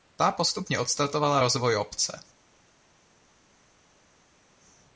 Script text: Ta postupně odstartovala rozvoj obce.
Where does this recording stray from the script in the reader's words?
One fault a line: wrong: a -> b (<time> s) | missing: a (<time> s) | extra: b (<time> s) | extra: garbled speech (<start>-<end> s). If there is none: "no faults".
no faults